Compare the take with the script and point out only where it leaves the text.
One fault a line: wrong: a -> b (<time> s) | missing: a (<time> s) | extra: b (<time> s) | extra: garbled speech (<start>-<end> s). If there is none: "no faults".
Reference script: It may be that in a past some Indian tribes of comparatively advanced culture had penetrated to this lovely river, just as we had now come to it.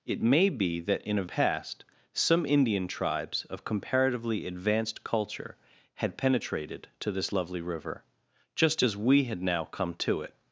no faults